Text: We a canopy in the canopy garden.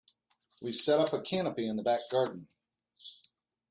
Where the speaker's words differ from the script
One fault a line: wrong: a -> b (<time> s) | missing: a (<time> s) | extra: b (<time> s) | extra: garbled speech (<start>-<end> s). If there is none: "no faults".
extra: set up (0.7 s)
wrong: canopy -> back (1.8 s)